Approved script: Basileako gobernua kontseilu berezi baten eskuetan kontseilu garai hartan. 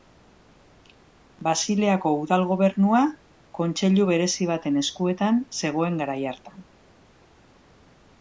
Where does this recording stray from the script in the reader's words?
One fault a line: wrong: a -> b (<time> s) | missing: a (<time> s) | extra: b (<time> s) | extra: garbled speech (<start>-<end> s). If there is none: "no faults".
extra: udal (2.2 s)
wrong: kontseilu -> zegoen (5.6 s)